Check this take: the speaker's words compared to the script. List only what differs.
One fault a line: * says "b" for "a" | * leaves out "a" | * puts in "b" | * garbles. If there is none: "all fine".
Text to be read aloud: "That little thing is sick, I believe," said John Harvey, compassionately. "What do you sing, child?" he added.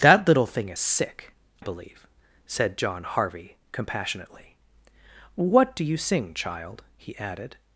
* leaves out "I"